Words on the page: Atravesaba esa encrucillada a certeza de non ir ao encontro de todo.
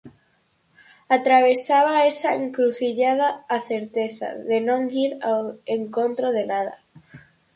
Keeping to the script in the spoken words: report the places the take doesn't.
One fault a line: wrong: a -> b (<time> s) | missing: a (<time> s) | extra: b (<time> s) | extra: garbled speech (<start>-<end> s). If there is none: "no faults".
wrong: todo -> nada (6.5 s)